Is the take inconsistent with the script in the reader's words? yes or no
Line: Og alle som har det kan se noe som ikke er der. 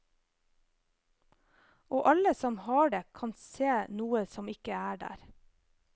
no